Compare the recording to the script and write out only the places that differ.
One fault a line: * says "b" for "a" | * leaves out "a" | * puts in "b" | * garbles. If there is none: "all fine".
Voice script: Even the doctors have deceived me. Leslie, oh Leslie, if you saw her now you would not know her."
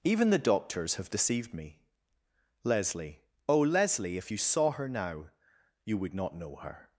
all fine